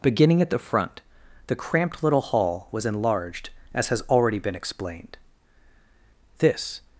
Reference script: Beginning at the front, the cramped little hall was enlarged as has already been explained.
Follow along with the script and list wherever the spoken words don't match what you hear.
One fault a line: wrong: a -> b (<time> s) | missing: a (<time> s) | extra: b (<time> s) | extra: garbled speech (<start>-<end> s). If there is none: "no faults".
extra: This (6.4 s)